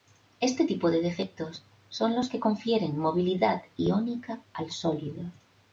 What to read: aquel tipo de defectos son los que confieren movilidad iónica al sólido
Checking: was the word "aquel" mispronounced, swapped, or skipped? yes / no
yes